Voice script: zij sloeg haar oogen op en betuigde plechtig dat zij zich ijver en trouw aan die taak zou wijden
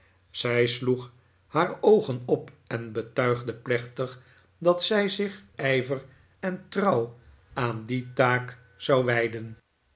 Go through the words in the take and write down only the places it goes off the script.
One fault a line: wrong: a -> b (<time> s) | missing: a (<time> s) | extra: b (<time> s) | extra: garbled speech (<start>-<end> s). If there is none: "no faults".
no faults